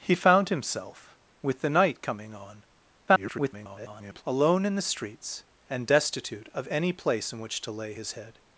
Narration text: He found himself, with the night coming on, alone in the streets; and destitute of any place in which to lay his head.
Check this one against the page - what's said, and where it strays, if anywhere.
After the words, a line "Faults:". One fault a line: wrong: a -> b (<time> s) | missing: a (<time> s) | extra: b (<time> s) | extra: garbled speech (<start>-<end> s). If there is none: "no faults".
He found himself, with the night coming on, [garbled] alone in the streets; and destitute of any place in which to lay his head.
Faults:
extra: garbled speech (3.1-4.2 s)